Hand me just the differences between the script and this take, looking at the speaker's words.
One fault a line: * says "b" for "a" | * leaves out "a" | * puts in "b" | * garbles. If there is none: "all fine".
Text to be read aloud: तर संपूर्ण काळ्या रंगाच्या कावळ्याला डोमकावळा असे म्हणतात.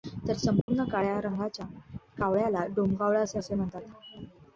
* puts in "असे"